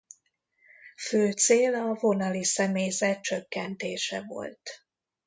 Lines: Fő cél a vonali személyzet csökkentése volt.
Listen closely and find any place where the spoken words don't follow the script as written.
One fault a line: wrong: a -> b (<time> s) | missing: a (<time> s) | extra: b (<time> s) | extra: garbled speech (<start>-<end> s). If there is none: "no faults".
no faults